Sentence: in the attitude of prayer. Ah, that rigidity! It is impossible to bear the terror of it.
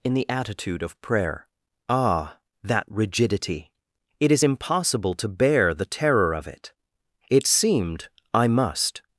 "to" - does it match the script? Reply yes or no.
yes